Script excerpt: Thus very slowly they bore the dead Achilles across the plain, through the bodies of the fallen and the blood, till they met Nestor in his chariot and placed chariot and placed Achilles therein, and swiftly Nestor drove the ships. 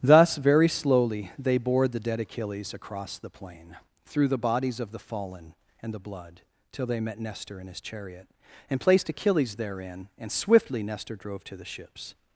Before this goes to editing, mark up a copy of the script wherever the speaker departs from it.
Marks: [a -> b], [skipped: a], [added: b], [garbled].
Thus very slowly they bore the dead Achilles across the plain, through the bodies of the fallen and the blood, till they met Nestor in his chariot and placed [skipped: chariot and placed] Achilles therein, and swiftly Nestor drove [added: to] the ships.